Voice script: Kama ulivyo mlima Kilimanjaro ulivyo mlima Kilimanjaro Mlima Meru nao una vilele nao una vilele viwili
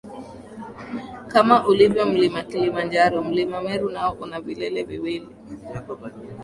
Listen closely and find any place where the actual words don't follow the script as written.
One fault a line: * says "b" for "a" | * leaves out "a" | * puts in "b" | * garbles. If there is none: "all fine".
* leaves out "ulivyo"
* leaves out "Kilimanjaro Mlima"
* leaves out "nao una vilele"